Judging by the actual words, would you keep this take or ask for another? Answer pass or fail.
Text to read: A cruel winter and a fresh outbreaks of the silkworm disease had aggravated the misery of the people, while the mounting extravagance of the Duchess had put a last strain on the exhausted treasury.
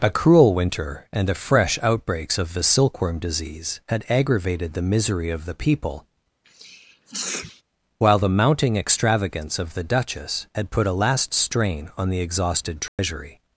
pass